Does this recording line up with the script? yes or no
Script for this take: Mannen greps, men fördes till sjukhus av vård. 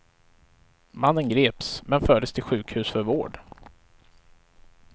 no